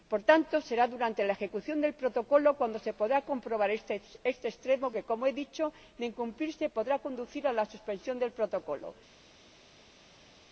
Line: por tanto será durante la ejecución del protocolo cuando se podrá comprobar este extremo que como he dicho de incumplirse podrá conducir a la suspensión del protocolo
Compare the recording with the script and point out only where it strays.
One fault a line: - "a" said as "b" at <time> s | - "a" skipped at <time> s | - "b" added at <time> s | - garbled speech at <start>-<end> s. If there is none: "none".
none